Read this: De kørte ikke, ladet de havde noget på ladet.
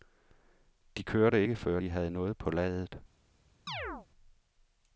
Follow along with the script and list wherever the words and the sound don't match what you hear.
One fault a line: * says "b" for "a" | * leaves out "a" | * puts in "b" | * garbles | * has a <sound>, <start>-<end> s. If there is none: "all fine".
* says "før" for "ladet"
* has a chirp, 3.7-4.1 s